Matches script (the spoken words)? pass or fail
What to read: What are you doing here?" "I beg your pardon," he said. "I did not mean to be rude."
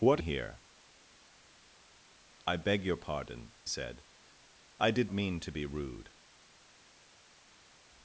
fail